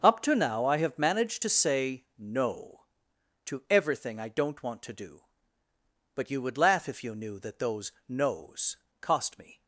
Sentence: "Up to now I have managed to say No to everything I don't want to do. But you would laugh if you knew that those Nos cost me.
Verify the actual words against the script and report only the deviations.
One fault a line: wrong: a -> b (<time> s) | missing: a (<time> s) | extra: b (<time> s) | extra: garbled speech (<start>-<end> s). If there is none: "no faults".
no faults